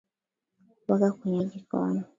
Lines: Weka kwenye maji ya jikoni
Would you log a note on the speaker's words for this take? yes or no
yes